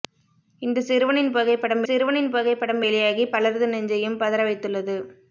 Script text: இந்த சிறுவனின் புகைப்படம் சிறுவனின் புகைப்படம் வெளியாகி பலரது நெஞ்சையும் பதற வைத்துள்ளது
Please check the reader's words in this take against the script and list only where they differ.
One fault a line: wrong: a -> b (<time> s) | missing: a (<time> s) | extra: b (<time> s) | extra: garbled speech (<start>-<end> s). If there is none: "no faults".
no faults